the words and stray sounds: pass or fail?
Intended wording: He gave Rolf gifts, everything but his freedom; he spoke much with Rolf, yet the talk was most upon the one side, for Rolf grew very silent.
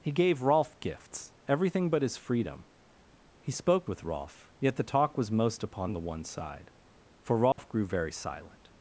fail